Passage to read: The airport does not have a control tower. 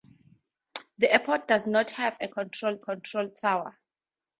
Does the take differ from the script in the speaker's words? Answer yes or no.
yes